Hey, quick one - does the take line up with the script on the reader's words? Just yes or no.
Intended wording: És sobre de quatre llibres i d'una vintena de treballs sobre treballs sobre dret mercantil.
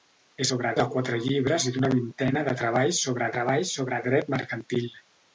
yes